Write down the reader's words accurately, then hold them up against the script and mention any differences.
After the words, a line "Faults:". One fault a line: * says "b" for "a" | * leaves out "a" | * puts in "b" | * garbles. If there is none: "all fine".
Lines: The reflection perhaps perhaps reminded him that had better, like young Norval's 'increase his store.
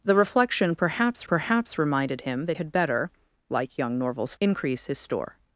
The reflection perhaps perhaps reminded him that had better, like young Norval's 'increase his store.
Faults:
all fine